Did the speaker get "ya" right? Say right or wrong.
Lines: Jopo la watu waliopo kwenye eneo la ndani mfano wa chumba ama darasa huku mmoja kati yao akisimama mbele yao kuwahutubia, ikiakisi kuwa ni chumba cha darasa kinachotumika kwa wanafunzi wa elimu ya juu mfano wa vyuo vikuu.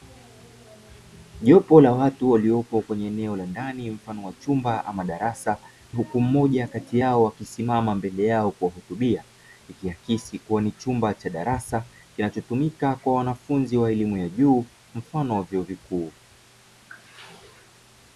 right